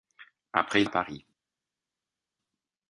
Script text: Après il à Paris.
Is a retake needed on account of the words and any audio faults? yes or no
no